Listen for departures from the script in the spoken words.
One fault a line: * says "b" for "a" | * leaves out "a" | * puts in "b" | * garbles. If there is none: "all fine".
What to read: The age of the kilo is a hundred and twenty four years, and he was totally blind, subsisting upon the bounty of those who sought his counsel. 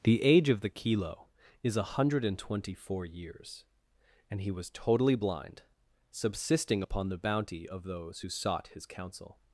all fine